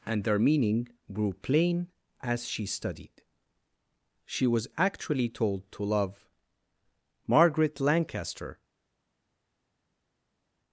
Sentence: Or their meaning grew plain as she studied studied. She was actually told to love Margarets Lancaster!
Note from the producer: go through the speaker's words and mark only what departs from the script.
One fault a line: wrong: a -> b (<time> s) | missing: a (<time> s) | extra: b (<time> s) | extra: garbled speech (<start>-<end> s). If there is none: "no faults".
wrong: Or -> And (0.1 s)
missing: studied (3.2 s)
wrong: Margarets -> Margaret (7.3 s)